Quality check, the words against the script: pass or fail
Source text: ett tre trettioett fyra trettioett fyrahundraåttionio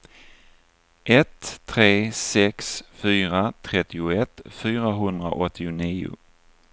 fail